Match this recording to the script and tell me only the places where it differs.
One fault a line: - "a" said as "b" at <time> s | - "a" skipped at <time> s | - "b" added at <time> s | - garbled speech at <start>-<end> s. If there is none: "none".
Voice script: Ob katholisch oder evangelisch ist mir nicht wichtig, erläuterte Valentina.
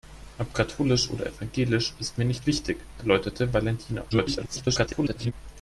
- garbled speech at 4.1-5.3 s